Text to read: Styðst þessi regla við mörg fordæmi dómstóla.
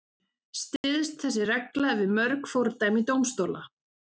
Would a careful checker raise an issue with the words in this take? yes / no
no